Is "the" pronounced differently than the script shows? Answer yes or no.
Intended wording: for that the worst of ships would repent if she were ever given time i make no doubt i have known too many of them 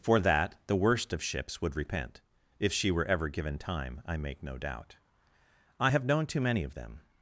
no